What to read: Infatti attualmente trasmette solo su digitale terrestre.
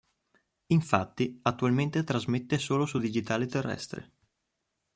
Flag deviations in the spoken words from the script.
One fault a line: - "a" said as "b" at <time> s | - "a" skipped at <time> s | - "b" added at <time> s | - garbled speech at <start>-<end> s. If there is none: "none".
none